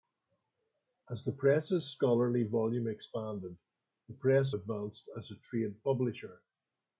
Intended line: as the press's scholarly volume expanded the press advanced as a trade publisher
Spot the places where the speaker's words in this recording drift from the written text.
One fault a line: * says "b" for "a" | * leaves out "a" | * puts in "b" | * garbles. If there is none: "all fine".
all fine